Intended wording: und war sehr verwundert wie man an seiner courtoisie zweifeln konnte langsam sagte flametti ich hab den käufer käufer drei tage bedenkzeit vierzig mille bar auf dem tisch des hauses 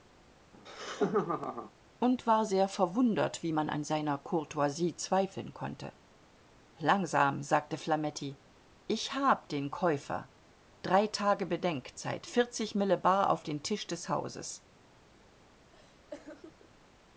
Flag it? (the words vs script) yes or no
yes